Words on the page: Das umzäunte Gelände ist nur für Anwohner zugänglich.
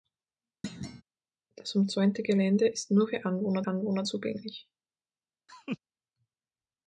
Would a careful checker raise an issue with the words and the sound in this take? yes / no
yes